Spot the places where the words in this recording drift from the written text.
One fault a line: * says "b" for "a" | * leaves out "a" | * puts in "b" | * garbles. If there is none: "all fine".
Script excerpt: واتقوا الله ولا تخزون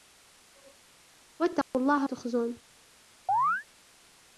* leaves out "ولا"